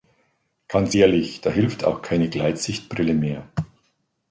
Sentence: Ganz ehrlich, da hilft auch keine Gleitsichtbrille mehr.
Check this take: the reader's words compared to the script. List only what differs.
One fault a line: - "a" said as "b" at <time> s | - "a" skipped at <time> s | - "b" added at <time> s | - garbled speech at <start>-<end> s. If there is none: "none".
none